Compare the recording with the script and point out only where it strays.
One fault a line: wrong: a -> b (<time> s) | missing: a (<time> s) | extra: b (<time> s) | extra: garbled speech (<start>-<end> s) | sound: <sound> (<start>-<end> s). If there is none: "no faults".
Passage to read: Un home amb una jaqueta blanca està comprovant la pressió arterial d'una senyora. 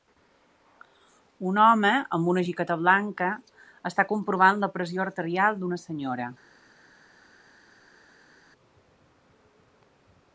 no faults